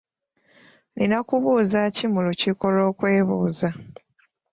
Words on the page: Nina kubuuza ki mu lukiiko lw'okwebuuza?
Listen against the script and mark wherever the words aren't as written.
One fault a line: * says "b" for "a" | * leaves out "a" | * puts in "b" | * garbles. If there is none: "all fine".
all fine